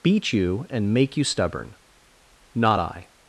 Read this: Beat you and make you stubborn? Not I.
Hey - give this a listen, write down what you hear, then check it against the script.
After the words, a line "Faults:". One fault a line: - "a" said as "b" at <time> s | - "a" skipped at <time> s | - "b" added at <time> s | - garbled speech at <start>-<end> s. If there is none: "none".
Beat you and make you stubborn? Not I.
Faults:
none